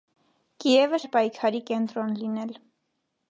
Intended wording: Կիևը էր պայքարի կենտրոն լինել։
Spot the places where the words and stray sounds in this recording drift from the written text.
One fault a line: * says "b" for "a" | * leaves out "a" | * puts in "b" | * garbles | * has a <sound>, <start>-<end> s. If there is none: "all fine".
all fine